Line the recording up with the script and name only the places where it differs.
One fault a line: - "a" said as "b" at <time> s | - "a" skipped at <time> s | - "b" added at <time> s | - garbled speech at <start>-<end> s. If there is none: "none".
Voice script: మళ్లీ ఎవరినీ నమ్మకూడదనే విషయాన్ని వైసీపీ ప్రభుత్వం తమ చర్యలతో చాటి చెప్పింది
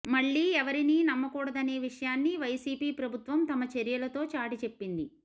none